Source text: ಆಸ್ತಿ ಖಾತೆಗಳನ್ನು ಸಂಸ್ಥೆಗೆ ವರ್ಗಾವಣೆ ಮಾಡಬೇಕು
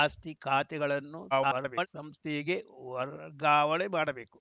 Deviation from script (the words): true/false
true